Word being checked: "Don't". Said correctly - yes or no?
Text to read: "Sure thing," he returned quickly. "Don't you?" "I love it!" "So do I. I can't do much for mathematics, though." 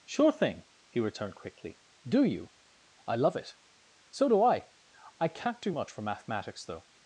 no